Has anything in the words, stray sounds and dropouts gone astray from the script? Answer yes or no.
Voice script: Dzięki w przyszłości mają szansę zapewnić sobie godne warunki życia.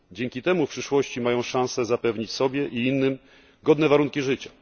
yes